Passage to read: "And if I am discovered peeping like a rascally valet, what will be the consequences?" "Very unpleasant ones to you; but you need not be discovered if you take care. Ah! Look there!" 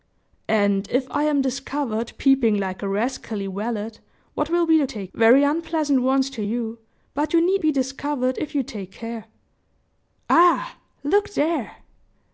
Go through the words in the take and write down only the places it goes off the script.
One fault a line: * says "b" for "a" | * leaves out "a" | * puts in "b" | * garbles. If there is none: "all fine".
* says "take" for "consequences"
* leaves out "not"